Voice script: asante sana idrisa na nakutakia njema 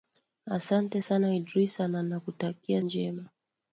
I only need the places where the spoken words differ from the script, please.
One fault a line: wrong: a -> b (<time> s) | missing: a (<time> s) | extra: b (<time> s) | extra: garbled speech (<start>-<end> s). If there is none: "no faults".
no faults